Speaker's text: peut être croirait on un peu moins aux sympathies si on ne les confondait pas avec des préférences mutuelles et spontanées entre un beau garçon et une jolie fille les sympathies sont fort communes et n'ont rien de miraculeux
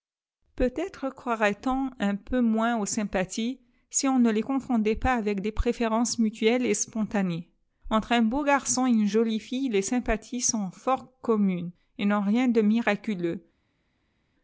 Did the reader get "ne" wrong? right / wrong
right